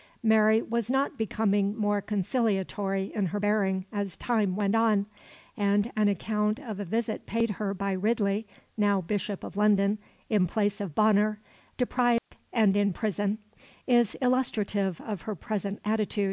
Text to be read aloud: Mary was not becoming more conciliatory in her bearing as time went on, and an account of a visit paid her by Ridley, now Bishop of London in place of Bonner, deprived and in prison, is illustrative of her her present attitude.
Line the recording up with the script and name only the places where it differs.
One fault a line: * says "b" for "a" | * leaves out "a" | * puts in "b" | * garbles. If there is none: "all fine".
* leaves out "her"